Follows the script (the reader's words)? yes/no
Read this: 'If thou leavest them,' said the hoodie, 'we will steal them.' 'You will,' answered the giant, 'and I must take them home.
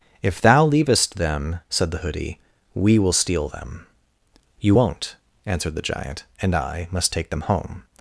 no